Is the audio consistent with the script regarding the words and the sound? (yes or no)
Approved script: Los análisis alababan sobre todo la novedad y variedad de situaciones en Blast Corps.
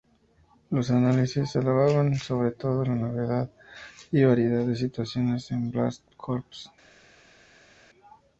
yes